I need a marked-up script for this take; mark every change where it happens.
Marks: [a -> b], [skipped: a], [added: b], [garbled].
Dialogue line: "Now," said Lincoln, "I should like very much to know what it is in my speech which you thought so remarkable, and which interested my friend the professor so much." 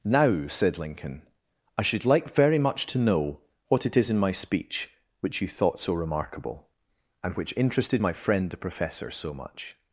"Now," said Lincoln, "I should like very much to know what it is in my speech which you thought so remarkable, and which interested my friend the professor so much."